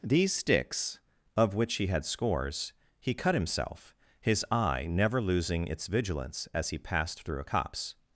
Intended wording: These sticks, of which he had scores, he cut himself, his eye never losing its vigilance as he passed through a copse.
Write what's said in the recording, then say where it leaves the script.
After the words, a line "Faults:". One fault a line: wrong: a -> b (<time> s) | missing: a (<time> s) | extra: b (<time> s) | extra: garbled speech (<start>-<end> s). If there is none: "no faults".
These sticks, of which he had scores, he cut himself, his eye never losing its vigilance as he passed through a copse.
Faults:
no faults